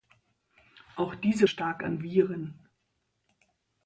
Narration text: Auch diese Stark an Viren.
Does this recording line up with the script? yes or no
yes